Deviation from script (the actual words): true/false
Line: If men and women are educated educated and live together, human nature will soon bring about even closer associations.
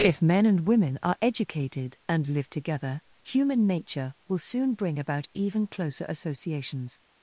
true